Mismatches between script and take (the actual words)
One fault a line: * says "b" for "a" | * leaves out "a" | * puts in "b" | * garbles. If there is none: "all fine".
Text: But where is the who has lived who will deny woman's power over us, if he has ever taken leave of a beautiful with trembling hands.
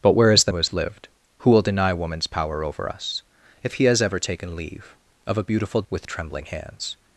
all fine